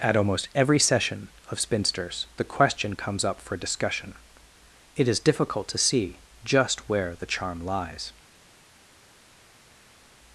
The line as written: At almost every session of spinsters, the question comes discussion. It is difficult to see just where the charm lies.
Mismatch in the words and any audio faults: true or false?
true